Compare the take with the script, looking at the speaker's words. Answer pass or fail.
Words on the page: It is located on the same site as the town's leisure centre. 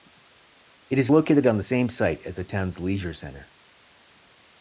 pass